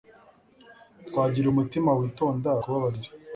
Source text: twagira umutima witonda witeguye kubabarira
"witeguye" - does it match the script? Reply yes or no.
no